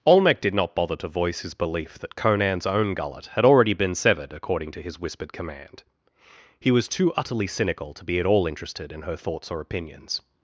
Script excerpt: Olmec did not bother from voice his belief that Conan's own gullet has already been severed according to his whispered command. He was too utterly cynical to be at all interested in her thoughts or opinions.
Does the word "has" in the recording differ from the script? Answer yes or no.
yes